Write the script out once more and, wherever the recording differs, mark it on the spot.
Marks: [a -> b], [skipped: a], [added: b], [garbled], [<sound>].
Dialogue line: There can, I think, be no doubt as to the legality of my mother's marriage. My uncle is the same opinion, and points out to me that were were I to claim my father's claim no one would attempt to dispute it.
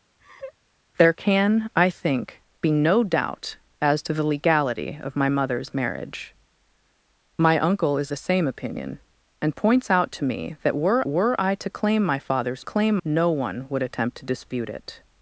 [laugh] There can, I think, be no doubt as to the legality of my mother's marriage. My uncle is the same opinion, and points out to me that were were I to claim my father's claim no one would attempt to dispute it.